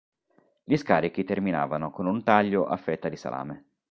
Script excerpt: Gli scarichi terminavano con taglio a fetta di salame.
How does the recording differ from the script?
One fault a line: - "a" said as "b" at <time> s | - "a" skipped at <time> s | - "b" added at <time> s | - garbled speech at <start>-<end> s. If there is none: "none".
- "un" added at 2.1 s